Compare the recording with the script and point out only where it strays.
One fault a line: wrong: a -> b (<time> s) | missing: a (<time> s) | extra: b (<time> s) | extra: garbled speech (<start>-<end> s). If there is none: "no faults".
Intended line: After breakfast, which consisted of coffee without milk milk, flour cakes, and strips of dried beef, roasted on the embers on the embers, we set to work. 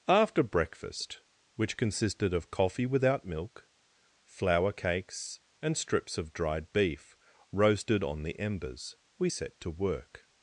missing: milk (3.7 s)
missing: on the embers (8.9 s)